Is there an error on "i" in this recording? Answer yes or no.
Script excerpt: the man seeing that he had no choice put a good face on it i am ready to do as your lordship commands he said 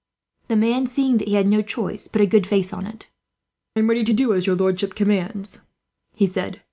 yes